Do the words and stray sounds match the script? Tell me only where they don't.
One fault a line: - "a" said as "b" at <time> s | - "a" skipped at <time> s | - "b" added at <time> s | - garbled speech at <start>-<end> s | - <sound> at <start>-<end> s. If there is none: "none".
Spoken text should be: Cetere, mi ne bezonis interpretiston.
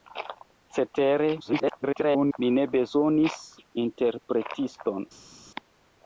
- garbled speech at 1.4-2.4 s